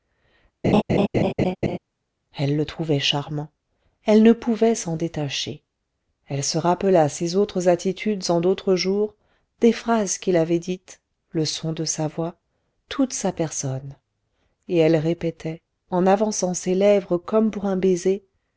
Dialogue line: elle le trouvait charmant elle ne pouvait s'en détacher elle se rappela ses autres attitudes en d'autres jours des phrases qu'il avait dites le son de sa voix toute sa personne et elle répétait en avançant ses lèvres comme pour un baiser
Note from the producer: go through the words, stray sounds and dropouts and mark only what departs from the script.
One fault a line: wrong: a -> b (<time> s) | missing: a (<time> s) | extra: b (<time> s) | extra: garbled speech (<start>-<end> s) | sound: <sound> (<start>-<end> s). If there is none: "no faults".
sound: laugh (0.6-1.8 s)